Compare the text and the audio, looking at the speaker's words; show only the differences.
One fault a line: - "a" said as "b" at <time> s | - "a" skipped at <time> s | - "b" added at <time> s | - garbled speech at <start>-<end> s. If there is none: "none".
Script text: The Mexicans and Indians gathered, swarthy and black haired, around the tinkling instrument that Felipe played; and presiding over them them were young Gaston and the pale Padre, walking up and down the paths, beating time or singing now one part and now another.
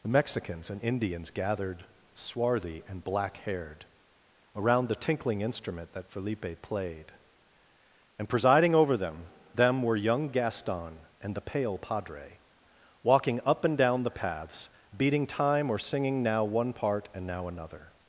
none